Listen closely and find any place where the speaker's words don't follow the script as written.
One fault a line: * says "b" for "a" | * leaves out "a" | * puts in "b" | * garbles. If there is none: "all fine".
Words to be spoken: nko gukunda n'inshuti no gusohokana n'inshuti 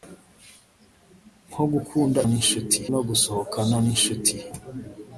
all fine